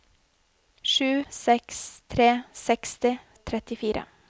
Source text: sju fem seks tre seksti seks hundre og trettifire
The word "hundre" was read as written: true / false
false